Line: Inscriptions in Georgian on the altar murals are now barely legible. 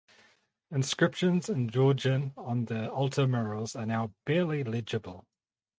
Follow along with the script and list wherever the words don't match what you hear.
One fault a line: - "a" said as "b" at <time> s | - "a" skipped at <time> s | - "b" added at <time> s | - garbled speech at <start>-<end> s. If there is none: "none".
none